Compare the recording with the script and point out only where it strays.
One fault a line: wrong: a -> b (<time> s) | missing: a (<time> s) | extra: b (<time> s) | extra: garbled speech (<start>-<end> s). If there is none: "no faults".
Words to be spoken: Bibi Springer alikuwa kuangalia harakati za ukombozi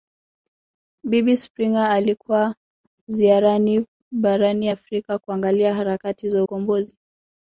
extra: ziarani barani Afrika (3.1 s)